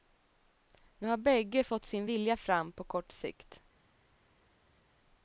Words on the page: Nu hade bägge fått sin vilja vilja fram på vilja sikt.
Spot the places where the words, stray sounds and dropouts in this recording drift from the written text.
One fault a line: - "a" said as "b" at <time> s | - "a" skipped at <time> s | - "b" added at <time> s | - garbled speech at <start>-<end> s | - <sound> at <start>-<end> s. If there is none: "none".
- "hade" said as "har" at 1.1 s
- "vilja" skipped at 2.4 s
- "vilja" said as "kort" at 2.8 s